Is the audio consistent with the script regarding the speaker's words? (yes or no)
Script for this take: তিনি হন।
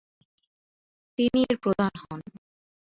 no